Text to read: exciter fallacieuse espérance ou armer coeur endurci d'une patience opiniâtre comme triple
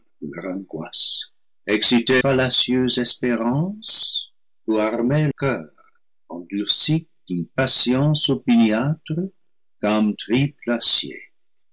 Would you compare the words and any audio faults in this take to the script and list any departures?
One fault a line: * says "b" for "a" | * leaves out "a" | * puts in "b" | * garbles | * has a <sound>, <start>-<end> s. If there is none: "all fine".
all fine